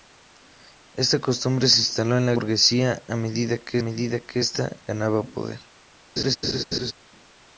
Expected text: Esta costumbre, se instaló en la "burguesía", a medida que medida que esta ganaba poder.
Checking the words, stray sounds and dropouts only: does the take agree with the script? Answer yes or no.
no